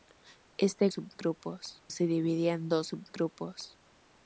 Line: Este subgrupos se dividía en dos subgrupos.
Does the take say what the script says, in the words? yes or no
yes